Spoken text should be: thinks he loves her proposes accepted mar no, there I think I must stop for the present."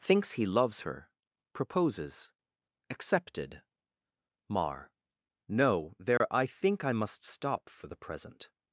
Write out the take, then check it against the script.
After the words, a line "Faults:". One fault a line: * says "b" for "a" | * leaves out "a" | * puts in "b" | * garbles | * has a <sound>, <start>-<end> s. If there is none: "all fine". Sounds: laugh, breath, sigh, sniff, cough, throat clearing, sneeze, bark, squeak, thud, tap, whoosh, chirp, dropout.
thinks he loves her proposes accepted mar no, there I think I must stop for the present."
Faults:
* has a dropout, 6.2-6.2 s